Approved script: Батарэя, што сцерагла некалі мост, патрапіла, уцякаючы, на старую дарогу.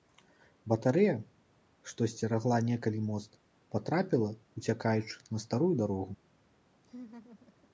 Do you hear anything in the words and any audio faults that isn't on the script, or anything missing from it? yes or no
yes